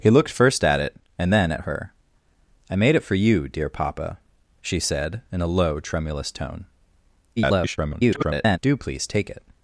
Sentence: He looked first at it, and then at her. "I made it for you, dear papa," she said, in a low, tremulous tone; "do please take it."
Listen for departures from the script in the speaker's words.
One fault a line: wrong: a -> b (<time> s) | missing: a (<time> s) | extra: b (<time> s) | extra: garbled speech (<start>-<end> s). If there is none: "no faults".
extra: garbled speech (7.4-8.6 s)